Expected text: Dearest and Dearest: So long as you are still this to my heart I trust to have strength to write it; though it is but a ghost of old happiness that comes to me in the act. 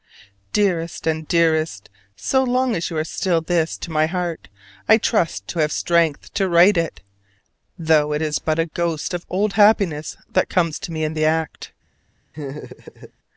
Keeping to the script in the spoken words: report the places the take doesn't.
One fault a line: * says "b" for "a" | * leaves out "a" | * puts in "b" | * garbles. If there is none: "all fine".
all fine